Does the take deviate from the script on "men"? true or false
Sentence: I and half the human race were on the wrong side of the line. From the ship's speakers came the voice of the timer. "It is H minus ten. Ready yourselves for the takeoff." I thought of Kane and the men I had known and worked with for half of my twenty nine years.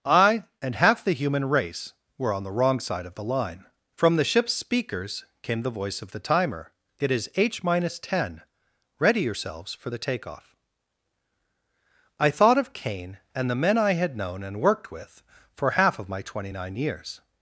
false